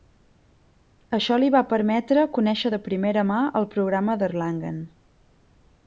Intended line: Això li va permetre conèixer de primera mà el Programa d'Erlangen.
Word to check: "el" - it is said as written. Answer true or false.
true